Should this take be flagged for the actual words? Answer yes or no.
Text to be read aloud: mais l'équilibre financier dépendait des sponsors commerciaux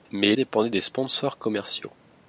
yes